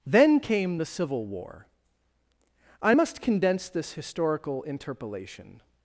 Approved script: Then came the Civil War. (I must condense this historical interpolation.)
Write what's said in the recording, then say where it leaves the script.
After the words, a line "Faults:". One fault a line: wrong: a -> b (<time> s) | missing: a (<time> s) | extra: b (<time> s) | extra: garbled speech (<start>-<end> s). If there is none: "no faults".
Then came the Civil War. (I must condense this historical interpolation.)
Faults:
no faults